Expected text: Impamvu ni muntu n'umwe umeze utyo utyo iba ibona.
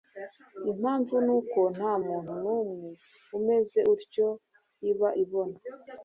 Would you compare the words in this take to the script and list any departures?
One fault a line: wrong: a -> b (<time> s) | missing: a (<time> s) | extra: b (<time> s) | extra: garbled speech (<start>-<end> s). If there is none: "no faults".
extra: uko nta (1.4 s)
missing: utyo (4.3 s)